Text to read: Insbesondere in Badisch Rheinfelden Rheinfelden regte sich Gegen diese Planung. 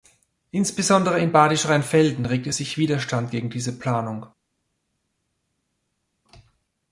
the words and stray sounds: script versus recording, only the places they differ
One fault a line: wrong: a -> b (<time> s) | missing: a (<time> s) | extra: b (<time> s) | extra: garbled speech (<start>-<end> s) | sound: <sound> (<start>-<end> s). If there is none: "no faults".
missing: Rheinfelden (2.2 s)
extra: Widerstand (2.8 s)